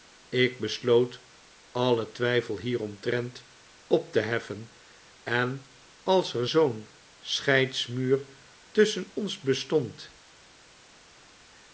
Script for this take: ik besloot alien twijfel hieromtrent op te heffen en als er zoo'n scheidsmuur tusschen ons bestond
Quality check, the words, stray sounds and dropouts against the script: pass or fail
pass